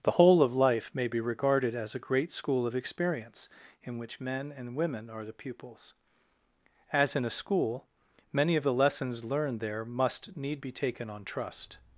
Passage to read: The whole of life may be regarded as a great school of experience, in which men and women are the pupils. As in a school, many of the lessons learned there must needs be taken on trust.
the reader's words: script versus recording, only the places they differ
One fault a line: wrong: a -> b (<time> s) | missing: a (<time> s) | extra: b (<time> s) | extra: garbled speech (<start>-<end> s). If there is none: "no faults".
wrong: needs -> need (10.4 s)